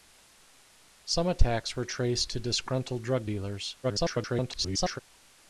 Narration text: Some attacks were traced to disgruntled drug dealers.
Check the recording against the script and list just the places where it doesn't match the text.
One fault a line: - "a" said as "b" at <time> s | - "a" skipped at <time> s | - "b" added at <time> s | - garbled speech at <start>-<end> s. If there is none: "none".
- garbled speech at 3.8-5.0 s